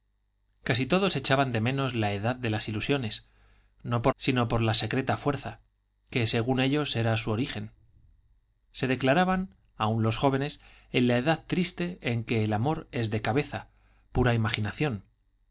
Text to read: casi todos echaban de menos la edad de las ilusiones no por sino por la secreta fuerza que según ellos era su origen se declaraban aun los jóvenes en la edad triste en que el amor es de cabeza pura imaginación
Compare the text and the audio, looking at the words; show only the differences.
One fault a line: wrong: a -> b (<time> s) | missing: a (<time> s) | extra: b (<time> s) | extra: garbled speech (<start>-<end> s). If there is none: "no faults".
no faults